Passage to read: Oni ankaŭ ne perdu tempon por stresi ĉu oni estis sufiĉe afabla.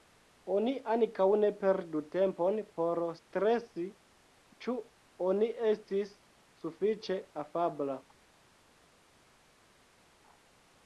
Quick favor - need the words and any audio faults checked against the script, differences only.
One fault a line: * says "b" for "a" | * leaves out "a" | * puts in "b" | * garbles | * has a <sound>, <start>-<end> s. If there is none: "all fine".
all fine